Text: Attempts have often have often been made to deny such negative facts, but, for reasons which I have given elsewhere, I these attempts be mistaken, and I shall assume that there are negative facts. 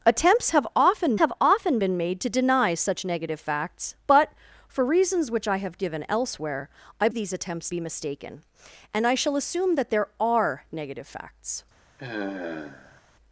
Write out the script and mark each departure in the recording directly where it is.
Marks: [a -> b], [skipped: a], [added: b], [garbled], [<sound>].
Attempts have often have often been made to deny such negative facts, but, for reasons which I have given elsewhere, I these attempts be mistaken, and I shall assume that there are negative facts. [sigh]